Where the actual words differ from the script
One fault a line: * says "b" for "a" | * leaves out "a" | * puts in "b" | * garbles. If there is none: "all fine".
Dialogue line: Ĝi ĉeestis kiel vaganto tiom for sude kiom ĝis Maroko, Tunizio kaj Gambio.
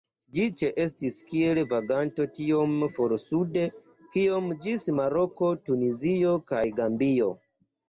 all fine